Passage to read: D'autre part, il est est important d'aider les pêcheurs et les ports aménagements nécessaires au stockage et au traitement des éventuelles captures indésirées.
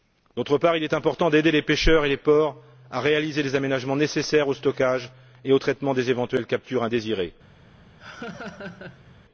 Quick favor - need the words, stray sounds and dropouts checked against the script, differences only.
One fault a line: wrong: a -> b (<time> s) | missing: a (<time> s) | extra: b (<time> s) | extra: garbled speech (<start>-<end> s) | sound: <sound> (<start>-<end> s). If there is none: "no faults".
missing: est (0.9 s)
extra: à réaliser les (2.9 s)
sound: laugh (8.0-9.2 s)